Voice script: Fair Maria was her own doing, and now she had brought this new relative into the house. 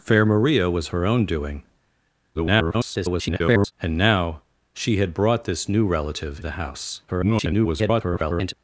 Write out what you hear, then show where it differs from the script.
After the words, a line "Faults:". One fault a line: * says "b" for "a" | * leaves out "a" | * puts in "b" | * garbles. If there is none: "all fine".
Fair Maria was her own doing, [garbled] and now she had brought this new relative the house. [garbled]
Faults:
* garbles
* leaves out "into"
* garbles